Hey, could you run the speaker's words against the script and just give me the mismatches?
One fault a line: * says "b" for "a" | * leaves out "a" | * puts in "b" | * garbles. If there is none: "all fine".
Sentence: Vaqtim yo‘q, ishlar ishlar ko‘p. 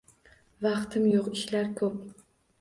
* leaves out "ishlar"